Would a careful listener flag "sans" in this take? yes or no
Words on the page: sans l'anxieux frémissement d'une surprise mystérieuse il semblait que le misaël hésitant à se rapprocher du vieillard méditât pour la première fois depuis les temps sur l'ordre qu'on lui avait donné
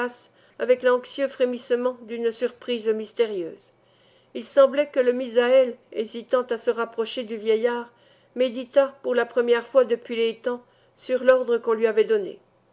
yes